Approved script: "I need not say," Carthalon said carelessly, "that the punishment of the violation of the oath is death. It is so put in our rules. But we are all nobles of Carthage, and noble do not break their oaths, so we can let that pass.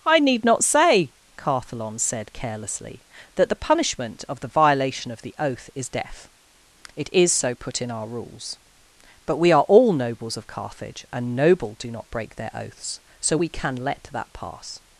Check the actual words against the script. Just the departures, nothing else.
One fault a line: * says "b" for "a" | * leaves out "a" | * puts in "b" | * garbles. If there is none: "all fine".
all fine